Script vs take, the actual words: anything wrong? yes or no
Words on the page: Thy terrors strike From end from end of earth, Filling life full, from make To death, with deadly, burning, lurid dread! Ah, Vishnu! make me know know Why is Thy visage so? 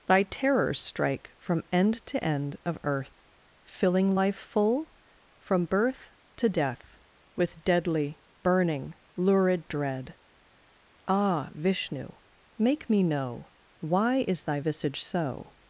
yes